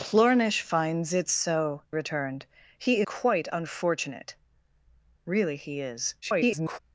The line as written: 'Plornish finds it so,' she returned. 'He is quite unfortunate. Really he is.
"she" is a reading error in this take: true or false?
true